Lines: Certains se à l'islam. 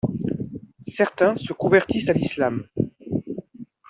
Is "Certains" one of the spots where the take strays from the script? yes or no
no